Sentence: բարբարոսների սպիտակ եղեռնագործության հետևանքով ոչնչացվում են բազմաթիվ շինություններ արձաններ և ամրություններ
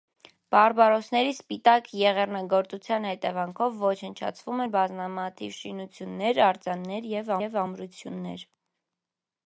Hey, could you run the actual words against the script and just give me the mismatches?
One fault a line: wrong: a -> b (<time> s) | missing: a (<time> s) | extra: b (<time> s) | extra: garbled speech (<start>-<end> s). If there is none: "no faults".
extra: և (7.4 s)